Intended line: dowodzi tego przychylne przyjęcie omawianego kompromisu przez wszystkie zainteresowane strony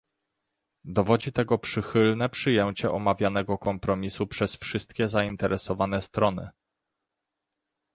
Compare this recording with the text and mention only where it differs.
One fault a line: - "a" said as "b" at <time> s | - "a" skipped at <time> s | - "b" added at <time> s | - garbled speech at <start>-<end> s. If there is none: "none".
none